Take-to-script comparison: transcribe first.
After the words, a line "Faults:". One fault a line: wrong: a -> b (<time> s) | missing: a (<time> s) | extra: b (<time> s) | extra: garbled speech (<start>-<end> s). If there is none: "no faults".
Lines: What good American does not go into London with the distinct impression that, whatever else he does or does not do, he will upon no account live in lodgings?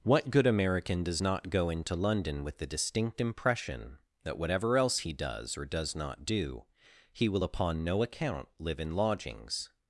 What good American does not go into London with the distinct impression that, whatever else he does or does not do, he will upon no account live in lodgings?
Faults:
no faults